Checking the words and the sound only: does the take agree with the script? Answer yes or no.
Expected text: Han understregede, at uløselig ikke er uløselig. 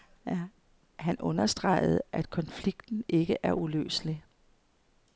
no